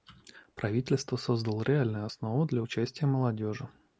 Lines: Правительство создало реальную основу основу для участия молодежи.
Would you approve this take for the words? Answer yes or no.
no